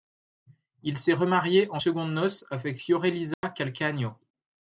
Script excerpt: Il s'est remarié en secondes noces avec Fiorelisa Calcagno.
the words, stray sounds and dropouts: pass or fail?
fail